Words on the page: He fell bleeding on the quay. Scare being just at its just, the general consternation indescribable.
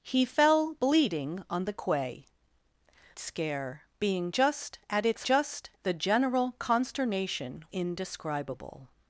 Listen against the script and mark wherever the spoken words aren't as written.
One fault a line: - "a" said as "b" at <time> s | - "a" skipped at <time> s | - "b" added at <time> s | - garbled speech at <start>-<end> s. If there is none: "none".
none